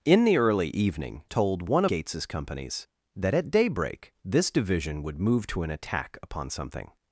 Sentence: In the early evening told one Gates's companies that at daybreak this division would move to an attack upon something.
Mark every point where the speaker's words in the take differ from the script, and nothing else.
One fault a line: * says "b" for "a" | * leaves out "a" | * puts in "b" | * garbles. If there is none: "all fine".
all fine